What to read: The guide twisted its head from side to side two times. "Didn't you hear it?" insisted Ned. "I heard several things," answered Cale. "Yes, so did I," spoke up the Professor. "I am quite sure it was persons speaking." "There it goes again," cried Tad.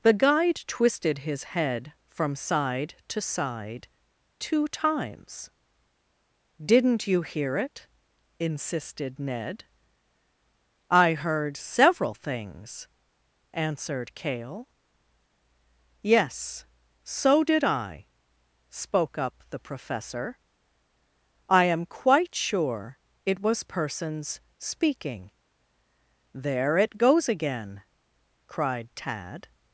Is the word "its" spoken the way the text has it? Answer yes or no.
no